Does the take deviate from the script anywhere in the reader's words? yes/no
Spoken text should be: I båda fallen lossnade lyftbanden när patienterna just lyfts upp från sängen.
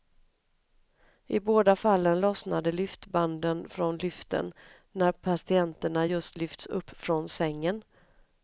yes